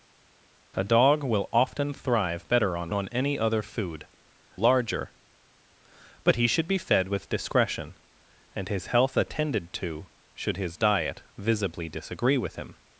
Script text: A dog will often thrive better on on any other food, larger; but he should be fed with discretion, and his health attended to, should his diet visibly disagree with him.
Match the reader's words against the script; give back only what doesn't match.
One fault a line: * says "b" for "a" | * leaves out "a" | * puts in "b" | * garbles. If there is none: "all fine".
all fine